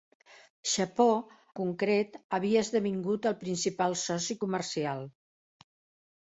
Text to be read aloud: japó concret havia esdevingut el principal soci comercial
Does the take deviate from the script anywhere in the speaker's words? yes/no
no